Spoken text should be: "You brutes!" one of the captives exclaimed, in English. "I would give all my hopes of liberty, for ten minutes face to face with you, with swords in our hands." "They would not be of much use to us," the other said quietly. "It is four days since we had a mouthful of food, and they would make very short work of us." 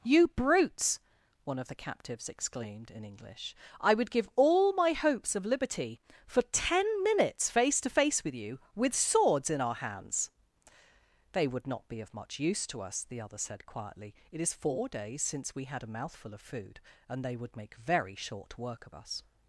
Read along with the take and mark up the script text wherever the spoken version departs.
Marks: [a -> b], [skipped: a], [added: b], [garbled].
"You brutes!" one of the captives exclaimed, in English. "I would give all my hopes of liberty, for ten minutes face to face with you, with swords in our hands." "They would not be of much use to us," the other said quietly. "It is four days since we had a mouthful of food, and they would make very short work of us."